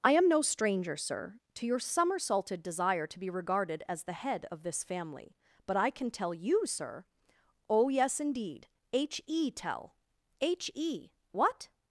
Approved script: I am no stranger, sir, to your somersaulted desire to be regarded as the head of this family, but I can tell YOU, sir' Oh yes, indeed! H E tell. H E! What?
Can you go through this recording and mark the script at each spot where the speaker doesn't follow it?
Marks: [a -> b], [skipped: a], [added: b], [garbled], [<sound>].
I am no stranger, sir, to your somersaulted desire to be regarded as the head of this family, but I can tell YOU, sir' Oh yes, indeed! H E tell. H E! What?